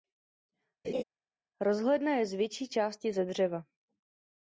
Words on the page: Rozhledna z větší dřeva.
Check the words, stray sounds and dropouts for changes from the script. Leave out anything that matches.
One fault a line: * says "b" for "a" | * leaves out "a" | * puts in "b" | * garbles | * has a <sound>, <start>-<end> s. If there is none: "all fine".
* has a laugh, 0.8-1.0 s
* puts in "je"
* puts in "části ze"